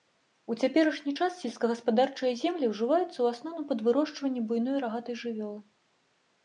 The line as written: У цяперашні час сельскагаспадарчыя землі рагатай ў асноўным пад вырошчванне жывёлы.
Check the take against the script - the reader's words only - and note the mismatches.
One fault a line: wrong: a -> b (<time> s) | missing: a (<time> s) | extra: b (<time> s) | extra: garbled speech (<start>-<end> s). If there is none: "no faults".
wrong: рагатай -> ўжываюцца (2.7 s)
extra: буйной рагатай (4.5 s)